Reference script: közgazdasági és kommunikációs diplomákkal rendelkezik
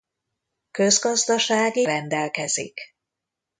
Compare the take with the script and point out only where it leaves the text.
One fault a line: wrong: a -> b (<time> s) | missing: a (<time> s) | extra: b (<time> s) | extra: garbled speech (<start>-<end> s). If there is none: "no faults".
missing: és kommunikációs diplomákkal (1.8 s)